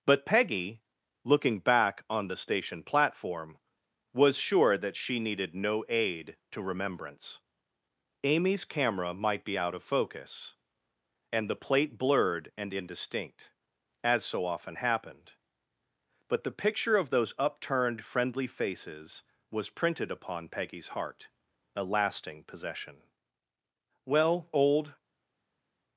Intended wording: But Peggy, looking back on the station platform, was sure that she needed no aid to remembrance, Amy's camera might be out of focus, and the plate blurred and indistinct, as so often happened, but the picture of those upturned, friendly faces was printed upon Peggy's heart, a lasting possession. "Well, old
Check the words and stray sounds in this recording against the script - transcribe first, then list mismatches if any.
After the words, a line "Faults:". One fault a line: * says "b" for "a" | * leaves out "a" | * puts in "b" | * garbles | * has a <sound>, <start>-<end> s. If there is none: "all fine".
But Peggy, looking back on the station platform, was sure that she needed no aid to remembrance, Amy's camera might be out of focus, and the plate blurred and indistinct, as so often happened, but the picture of those upturned, friendly faces was printed upon Peggy's heart, a lasting possession. "Well, old
Faults:
all fine